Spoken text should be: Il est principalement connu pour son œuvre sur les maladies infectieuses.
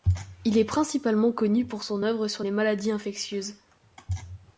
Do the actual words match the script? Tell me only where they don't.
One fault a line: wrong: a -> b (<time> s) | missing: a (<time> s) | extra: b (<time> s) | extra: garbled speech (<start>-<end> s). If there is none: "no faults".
no faults